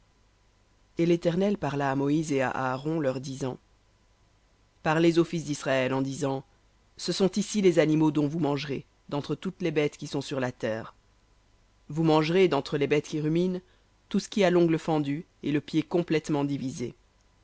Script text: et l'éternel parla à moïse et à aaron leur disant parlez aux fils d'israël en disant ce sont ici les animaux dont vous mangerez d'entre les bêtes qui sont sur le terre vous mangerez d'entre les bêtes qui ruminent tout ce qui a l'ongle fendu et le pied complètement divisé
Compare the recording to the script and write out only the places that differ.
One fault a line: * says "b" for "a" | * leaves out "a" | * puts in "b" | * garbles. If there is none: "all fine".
* puts in "toutes"
* says "la" for "le"